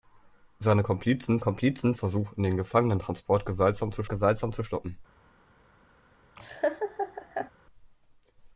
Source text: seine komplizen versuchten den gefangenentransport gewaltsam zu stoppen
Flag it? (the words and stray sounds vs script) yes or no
yes